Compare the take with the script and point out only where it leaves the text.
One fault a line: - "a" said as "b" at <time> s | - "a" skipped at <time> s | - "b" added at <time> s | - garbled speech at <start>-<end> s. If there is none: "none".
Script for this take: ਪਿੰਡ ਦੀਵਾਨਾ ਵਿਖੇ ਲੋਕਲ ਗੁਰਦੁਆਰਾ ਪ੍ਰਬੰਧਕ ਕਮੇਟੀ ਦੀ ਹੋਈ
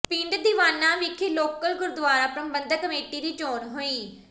- "ਚੋਣ" added at 3.3 s